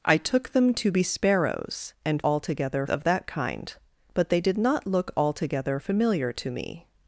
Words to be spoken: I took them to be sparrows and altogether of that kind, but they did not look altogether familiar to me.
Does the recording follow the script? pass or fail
pass